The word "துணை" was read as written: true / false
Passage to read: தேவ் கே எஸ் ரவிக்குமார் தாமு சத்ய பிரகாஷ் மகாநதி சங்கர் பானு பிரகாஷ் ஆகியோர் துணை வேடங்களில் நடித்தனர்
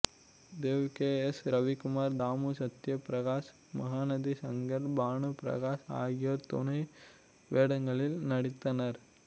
true